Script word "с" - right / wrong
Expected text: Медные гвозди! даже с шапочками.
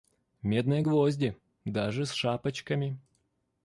right